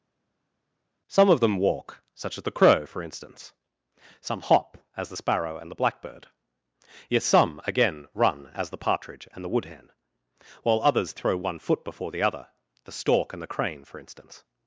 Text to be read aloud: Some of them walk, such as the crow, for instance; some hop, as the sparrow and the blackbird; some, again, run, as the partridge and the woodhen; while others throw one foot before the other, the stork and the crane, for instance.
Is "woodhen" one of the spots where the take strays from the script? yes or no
no